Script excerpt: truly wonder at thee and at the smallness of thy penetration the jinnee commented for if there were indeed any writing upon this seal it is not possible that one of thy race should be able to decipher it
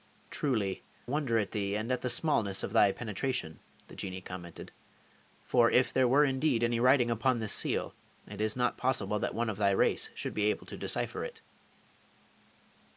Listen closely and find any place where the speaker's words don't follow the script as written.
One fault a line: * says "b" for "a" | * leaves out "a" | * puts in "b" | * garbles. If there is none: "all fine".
all fine